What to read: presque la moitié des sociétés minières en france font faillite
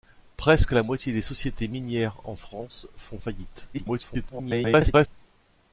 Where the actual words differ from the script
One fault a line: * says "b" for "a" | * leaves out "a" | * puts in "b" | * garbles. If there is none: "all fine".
* garbles